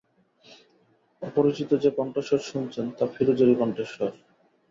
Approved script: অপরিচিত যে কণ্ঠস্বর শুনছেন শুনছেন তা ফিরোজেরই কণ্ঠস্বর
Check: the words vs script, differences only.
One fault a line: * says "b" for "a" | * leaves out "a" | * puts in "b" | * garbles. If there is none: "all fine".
* leaves out "শুনছেন"